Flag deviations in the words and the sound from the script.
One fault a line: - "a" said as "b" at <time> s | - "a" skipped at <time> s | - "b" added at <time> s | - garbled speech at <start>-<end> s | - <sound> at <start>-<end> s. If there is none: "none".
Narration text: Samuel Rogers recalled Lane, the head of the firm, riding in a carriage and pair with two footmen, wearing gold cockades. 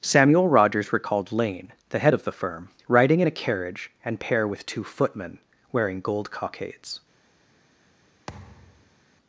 - thud at 8.3-9.0 s